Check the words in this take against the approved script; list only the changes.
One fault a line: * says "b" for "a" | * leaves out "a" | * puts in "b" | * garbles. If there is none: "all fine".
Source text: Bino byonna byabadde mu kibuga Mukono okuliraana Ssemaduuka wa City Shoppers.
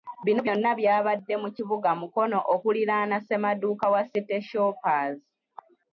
all fine